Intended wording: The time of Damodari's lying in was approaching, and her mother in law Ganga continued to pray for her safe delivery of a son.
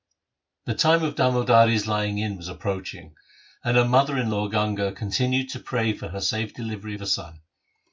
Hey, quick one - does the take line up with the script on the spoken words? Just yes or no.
yes